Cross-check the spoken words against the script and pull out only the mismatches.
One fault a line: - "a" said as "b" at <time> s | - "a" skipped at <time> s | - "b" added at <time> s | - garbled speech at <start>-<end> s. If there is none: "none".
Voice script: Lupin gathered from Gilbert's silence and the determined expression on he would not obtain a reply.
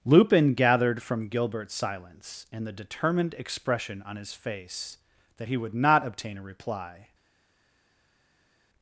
- "his face that" added at 4.2 s